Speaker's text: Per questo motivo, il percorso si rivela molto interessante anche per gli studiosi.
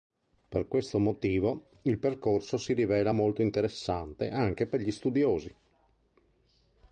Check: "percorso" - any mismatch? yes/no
no